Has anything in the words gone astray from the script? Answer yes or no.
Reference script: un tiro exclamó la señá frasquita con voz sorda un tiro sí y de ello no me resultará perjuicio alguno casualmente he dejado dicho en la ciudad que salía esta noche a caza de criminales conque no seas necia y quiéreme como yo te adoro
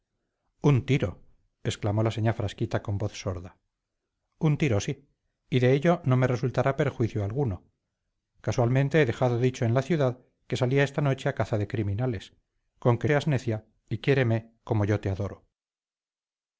yes